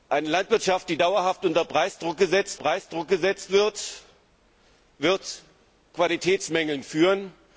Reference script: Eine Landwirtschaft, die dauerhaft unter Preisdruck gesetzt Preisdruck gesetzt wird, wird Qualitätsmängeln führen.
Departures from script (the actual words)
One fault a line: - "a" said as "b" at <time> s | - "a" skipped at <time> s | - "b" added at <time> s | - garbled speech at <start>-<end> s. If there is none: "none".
none